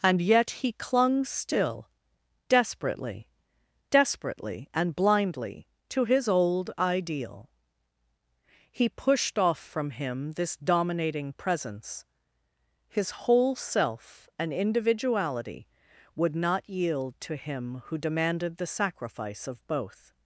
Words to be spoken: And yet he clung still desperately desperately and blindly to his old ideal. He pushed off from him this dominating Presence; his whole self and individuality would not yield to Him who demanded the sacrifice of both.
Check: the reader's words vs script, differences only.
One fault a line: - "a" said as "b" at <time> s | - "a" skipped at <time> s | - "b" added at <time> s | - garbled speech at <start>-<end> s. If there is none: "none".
none